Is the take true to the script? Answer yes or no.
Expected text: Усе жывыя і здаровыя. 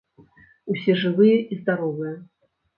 yes